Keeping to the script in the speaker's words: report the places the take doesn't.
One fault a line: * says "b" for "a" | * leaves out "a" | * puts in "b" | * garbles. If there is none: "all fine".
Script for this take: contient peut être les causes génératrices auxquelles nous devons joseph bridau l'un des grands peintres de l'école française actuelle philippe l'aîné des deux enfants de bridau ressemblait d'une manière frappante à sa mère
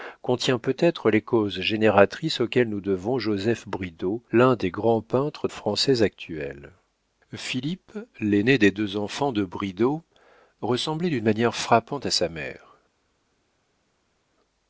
* leaves out "de l'école"